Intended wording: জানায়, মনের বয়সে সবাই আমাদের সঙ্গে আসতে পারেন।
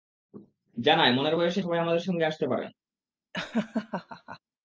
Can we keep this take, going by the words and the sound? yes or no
no